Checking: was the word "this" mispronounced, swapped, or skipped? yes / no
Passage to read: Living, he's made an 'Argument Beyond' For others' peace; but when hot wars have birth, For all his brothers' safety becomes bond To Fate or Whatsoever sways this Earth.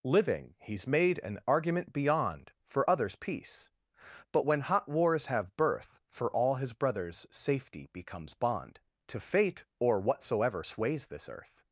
no